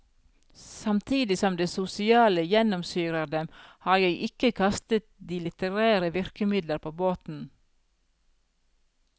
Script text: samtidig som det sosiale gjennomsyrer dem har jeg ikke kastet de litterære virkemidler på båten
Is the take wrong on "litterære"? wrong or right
right